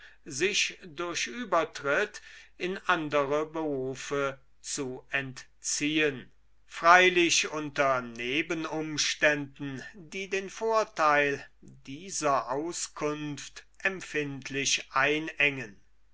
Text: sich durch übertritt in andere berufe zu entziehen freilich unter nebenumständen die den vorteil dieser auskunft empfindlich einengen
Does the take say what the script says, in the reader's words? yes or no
yes